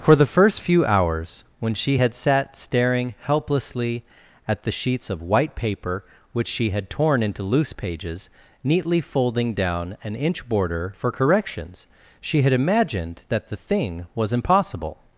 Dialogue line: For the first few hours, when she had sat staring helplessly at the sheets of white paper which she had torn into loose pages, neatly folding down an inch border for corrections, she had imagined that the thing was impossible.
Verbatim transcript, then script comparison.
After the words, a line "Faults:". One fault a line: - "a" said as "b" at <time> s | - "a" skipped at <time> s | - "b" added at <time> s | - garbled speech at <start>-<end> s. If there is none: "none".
For the first few hours, when she had sat staring helplessly at the sheets of white paper which she had torn into loose pages, neatly folding down an inch border for corrections, she had imagined that the thing was impossible.
Faults:
none